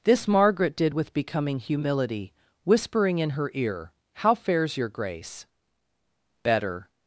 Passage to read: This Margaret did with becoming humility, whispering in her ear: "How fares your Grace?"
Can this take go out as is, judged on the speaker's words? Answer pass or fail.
fail